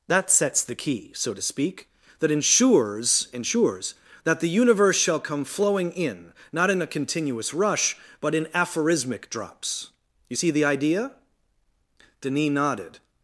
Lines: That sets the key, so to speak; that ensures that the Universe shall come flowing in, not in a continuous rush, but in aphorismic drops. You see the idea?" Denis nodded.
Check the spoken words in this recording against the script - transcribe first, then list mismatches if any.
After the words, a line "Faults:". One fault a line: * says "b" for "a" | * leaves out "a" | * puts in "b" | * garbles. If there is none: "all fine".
That sets the key, so to speak; that ensures ensures that the Universe shall come flowing in, not in a continuous rush, but in aphorismic drops. You see the idea?" Denis nodded.
Faults:
* puts in "ensures"